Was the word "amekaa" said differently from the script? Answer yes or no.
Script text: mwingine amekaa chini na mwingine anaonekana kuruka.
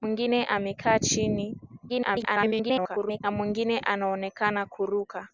no